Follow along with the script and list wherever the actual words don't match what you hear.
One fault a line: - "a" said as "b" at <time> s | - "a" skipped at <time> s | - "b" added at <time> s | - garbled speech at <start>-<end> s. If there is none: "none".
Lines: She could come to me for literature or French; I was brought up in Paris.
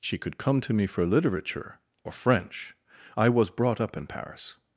none